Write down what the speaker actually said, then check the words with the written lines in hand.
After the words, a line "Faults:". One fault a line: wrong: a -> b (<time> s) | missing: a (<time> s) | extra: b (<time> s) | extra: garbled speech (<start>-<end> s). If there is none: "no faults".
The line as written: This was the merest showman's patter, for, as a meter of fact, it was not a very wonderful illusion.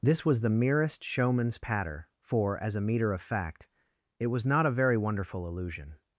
This was the merest showman's patter, for, as a meter of fact, it was not a very wonderful illusion.
Faults:
no faults